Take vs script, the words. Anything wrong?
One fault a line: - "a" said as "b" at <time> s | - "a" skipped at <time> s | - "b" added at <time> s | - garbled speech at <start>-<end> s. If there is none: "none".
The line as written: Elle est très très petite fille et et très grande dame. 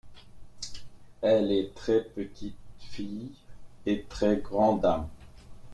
- "très" skipped at 2.0 s
- "et" skipped at 4.0 s